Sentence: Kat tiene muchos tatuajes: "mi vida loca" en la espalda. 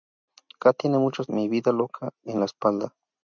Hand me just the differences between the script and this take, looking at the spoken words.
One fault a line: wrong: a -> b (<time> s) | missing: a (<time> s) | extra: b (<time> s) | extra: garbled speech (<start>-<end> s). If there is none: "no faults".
missing: tatuajes (1.3 s)